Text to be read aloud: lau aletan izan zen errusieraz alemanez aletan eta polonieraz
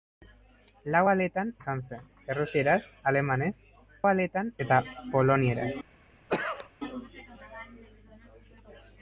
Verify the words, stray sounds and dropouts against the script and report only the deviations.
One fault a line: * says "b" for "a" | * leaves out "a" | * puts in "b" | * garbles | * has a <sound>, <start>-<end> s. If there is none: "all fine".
* has a cough, 6.3-6.7 s